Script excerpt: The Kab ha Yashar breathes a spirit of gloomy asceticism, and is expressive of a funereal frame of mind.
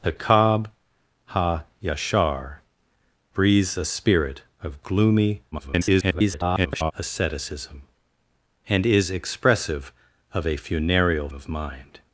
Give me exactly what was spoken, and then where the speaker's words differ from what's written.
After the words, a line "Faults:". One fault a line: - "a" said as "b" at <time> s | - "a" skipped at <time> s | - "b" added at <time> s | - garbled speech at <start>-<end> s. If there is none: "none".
The Kab ha Yashar breathes a spirit of gloomy [garbled] asceticism, and is expressive of a funereal of mind.
Faults:
- garbled speech at 5.5-6.9 s
- "frame" skipped at 11.3 s